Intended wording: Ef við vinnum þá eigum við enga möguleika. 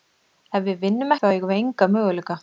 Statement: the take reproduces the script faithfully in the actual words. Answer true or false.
true